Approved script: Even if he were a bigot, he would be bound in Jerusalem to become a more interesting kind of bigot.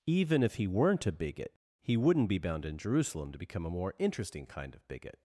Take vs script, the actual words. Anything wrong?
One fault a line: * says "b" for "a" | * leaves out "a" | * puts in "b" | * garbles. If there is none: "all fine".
* says "weren't" for "were"
* says "wouldn't" for "would"